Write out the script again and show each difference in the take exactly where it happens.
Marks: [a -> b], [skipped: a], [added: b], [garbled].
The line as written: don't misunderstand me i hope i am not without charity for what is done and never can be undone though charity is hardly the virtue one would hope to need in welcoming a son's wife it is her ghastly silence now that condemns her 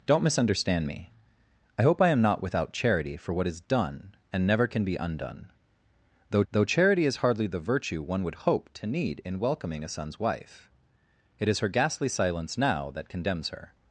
don't misunderstand me i hope i am not without charity for what is done and never can be undone though [added: though] charity is hardly the virtue one would hope to need in welcoming a son's wife it is her ghastly silence now that condemns her